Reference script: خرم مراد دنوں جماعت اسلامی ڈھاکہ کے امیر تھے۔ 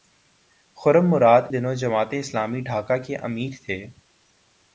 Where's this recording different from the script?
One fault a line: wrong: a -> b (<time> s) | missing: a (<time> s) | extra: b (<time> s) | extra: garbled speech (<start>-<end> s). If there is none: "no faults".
no faults